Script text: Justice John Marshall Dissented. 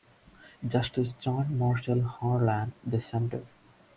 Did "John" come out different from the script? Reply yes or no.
no